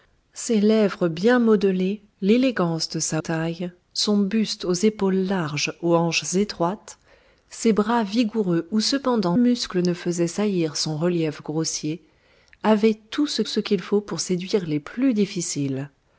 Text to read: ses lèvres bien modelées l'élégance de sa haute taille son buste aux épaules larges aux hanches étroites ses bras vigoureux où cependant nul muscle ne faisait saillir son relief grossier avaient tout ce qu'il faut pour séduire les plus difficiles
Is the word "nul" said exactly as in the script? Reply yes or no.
no